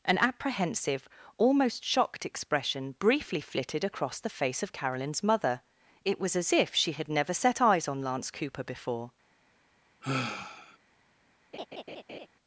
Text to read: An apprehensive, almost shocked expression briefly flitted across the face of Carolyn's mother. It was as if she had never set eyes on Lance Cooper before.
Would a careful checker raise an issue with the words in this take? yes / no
no